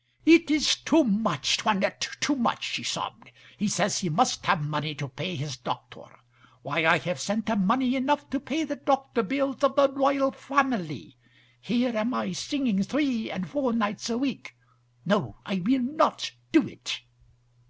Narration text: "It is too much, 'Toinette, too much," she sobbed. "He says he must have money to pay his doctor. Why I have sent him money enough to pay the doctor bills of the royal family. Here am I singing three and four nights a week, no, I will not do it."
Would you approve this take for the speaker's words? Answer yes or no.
yes